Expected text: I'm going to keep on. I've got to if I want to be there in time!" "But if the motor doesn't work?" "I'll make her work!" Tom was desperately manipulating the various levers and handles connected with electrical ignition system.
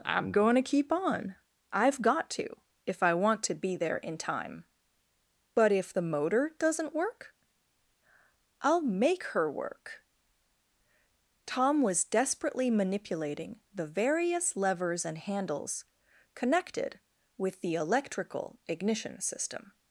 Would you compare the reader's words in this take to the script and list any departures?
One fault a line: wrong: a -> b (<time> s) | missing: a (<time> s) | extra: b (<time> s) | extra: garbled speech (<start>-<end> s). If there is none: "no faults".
extra: the (17.6 s)